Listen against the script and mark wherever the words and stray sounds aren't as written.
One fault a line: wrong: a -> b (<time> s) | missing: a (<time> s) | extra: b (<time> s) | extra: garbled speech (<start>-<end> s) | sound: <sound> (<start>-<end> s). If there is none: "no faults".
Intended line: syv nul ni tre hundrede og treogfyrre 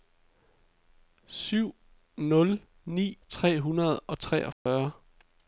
sound: dropout (4.5-4.7 s)